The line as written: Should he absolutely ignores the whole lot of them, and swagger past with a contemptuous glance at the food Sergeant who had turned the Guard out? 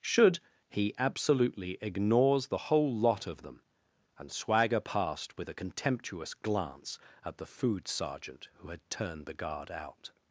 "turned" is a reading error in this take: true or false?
false